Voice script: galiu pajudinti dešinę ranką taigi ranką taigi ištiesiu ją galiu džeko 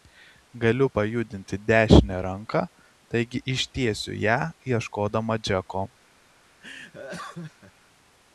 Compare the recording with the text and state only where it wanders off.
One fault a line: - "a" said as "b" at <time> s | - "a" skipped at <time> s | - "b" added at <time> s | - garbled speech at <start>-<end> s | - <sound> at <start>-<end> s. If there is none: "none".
- "ranką taigi" skipped at 3.4 s
- "galiu" said as "ieškodama" at 4.7 s
- laugh at 6.6-7.7 s